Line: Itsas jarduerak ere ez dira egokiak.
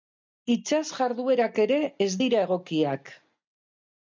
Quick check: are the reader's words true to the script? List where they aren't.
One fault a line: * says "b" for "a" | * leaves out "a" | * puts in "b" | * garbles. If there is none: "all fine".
all fine